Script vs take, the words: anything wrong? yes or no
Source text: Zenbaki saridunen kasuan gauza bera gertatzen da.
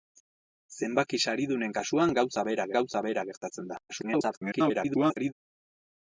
yes